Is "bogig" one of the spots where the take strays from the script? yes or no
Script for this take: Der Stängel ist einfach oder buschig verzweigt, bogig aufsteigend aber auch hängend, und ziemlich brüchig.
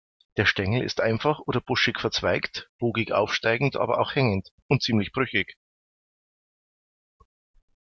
no